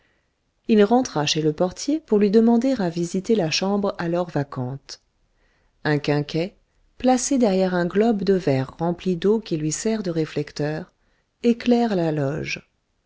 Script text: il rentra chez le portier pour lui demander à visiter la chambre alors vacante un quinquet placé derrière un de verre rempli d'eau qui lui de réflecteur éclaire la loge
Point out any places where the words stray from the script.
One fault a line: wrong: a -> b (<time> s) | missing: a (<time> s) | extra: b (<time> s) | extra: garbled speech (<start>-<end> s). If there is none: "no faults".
extra: globe (7.8 s)
extra: sert (9.7 s)